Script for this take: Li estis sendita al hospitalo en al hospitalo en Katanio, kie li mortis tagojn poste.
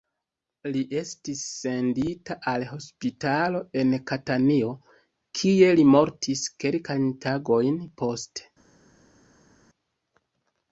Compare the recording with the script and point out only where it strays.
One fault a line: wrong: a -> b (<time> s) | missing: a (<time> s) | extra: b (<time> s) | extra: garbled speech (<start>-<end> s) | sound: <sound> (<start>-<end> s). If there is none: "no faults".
missing: al hospitalo en (3.9 s)
extra: kelkajn (6.7 s)